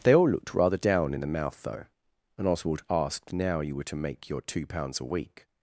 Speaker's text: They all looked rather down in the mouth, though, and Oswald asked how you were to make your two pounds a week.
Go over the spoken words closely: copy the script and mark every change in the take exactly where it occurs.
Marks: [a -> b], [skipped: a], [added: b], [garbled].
They all looked rather down in the mouth, though, and Oswald asked [how -> now] you were to make your two pounds a week.